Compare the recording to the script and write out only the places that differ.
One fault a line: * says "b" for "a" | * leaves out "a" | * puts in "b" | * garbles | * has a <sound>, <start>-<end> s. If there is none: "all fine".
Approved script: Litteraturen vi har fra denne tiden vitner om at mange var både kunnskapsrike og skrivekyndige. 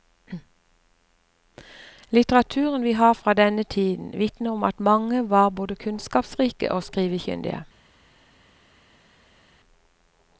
all fine